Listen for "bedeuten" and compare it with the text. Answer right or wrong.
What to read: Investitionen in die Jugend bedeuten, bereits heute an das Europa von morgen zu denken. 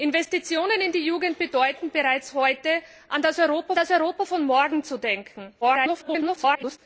right